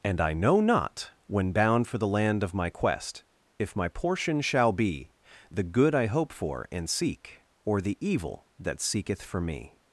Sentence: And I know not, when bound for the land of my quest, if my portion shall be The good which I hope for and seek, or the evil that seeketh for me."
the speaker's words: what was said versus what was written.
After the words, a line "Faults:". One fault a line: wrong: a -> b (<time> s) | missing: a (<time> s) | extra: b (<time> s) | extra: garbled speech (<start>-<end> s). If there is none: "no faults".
And I know not, when bound for the land of my quest, if my portion shall be The good I hope for and seek, or the evil that seeketh for me."
Faults:
missing: which (5.9 s)